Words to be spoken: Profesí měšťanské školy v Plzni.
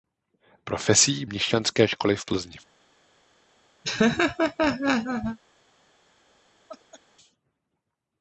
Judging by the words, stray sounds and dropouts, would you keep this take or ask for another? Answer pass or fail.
fail